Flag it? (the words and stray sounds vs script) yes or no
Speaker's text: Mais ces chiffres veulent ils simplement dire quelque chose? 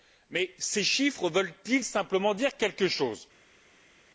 no